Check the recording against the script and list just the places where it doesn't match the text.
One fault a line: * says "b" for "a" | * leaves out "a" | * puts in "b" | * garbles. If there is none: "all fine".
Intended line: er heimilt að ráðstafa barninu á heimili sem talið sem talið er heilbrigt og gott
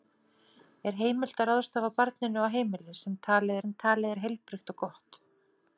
all fine